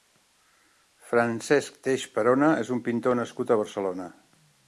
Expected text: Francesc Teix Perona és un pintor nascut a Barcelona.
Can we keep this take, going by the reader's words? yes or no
yes